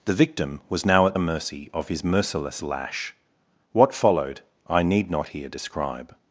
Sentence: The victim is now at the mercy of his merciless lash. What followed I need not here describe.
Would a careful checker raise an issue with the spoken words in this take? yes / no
yes